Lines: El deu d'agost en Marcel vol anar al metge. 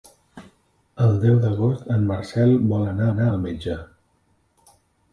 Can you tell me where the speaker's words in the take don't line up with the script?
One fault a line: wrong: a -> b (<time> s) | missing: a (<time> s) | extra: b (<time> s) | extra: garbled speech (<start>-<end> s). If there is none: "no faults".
extra: anar (3.1 s)